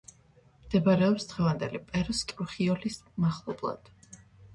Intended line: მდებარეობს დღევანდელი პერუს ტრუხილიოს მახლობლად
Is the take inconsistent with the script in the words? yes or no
no